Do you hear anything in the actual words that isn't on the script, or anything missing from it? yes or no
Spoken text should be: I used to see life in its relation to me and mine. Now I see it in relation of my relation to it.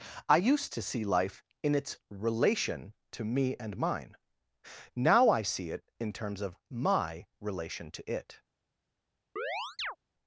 yes